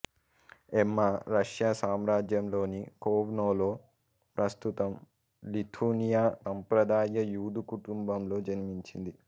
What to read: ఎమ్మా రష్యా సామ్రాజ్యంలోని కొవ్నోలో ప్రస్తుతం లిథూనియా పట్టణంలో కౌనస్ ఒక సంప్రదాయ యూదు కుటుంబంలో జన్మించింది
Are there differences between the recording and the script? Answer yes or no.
yes